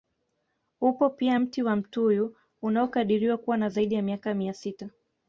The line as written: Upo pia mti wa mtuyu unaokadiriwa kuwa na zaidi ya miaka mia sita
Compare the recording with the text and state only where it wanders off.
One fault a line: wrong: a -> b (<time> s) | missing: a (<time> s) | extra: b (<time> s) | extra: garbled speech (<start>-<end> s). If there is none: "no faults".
no faults